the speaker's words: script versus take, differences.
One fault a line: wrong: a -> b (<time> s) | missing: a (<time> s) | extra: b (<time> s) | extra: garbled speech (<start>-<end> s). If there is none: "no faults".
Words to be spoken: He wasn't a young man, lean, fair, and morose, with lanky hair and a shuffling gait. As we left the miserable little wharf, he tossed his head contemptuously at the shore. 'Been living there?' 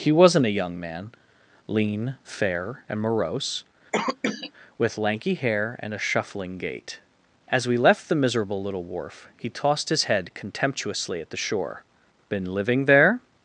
no faults